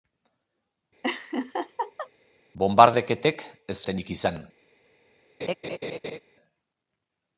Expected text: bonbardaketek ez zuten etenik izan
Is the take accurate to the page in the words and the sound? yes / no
no